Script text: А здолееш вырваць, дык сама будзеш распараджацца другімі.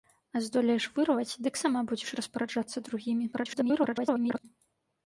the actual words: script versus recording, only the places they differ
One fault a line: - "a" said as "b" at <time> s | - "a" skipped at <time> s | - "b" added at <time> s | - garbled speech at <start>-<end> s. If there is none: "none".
- garbled speech at 3.3-4.4 s